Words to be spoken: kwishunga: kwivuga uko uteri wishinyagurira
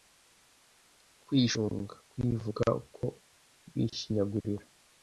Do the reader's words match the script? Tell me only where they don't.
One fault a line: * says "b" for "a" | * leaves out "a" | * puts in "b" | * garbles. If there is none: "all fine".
* leaves out "uteri"